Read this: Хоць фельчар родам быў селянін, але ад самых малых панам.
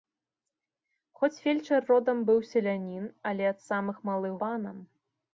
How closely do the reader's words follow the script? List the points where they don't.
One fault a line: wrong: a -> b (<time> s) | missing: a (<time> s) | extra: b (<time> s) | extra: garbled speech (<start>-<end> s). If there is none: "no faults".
no faults